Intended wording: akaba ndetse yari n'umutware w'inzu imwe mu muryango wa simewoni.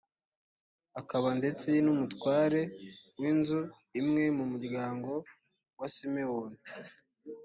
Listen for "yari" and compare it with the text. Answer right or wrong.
wrong